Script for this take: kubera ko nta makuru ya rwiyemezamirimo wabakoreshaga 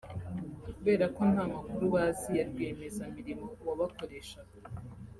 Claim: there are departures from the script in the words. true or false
true